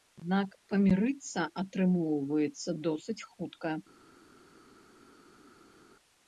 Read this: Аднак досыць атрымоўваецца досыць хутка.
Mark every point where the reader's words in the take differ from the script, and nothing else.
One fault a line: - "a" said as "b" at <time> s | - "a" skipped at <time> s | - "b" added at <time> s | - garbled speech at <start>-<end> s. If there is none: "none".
- "досыць" said as "памірыцца" at 0.7 s